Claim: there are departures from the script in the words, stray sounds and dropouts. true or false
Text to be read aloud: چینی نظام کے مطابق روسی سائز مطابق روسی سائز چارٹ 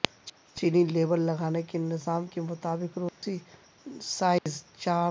true